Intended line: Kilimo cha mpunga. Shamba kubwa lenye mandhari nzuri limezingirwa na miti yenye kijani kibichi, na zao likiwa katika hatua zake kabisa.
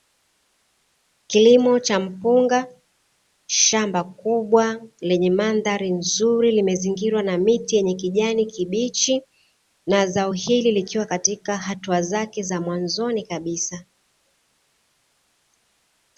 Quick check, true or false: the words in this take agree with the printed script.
false